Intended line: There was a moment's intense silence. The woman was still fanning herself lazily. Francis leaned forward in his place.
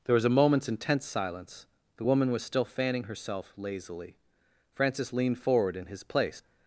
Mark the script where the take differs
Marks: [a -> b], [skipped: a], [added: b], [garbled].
There was a moment's intense silence. The woman was still fanning herself lazily. Francis leaned forward in his place.